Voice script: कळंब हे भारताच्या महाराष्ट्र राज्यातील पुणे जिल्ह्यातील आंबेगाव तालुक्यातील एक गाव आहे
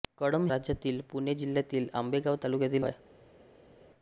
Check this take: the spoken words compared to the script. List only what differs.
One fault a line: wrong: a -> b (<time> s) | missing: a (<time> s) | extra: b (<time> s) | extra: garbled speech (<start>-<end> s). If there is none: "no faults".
missing: हे भारताच्या महाराष्ट्र (0.5 s)
missing: एक गाव (2.8 s)